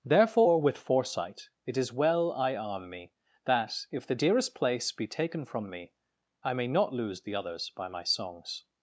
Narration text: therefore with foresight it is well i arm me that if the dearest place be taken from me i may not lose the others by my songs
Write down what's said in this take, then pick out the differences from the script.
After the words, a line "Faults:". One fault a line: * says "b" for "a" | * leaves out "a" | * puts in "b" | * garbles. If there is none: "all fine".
therefore with foresight it is well i arm me that if the dearest place be taken from me i may not lose the others by my songs
Faults:
all fine